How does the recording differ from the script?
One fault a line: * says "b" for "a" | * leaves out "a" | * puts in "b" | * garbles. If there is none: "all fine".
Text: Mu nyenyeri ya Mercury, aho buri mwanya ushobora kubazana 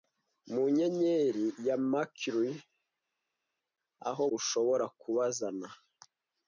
* leaves out "buri mwanya"